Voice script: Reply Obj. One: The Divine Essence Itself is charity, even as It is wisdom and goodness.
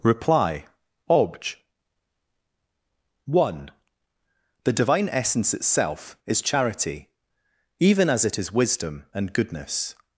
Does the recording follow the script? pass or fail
pass